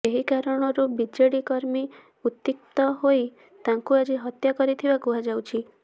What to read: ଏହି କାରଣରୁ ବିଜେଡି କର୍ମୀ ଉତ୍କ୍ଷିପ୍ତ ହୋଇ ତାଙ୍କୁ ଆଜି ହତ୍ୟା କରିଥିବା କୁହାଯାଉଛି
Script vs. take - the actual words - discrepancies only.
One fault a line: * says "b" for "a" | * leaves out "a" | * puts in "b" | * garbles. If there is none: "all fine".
all fine